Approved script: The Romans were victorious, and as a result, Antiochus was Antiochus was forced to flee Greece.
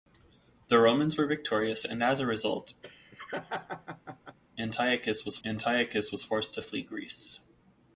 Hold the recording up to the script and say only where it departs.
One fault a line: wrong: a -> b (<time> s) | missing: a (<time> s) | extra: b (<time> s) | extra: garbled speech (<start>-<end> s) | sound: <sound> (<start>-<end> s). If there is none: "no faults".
sound: laugh (2.8-4.4 s)